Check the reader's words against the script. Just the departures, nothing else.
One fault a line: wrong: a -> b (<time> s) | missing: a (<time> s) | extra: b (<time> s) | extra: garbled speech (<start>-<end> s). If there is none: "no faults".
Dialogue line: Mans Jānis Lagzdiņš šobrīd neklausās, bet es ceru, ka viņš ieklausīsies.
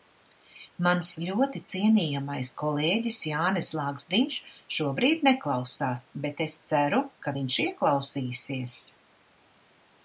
extra: ļoti cienījamais kolēģis (1.2 s)